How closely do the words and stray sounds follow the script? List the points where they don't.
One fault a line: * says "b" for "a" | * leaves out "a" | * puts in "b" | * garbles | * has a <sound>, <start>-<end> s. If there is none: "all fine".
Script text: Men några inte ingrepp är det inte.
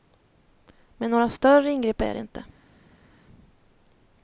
* says "större" for "inte"